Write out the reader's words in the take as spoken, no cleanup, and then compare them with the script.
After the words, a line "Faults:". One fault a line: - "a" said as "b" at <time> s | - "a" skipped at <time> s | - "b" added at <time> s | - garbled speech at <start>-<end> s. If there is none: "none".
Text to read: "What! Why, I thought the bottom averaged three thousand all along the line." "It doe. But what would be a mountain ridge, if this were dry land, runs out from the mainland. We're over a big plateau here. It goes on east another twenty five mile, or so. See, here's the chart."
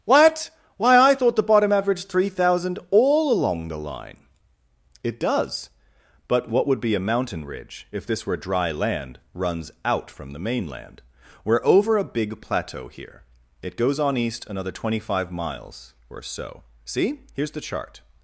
"What! Why, I thought the bottom averaged three thousand all along the line." "It does. But what would be a mountain ridge, if this were dry land, runs out from the mainland. We're over a big plateau here. It goes on east another twenty five miles, or so. See, here's the chart."
Faults:
- "doe" said as "does" at 5.2 s
- "mile" said as "miles" at 15.3 s